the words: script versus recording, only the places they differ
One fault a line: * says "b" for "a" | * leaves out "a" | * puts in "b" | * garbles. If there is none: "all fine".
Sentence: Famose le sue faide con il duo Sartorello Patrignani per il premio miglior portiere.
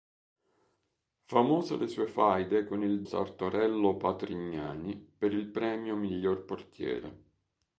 * leaves out "duo"